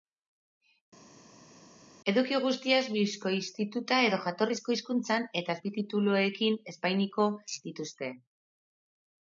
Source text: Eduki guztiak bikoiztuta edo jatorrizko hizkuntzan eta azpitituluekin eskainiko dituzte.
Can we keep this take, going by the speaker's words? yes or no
yes